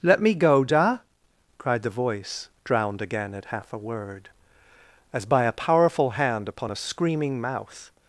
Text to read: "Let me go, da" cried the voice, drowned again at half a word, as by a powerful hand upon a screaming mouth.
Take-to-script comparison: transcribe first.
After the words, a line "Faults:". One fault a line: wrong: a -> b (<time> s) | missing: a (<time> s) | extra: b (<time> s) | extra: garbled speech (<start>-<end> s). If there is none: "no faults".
"Let me go, da" cried the voice, drowned again at half a word, as by a powerful hand upon a screaming mouth.
Faults:
no faults